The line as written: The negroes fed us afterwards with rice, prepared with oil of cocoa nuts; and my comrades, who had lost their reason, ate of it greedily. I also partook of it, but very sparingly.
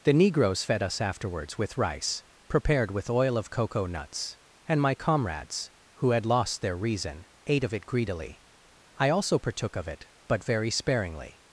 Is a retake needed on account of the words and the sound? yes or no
no